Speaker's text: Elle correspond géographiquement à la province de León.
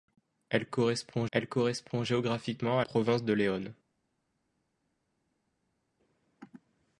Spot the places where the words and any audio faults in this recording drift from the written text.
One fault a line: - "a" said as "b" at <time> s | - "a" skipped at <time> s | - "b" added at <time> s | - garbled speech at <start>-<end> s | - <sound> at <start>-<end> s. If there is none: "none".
- "elle correspond" added at 1.3 s
- "la" skipped at 2.9 s